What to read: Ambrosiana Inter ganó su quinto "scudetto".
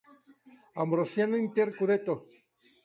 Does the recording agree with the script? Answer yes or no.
no